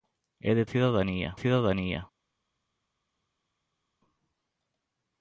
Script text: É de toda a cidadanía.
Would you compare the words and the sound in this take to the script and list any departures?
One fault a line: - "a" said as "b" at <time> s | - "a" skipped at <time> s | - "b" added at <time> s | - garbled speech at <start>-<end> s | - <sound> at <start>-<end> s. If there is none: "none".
- "toda" said as "cidadanía" at 0.7 s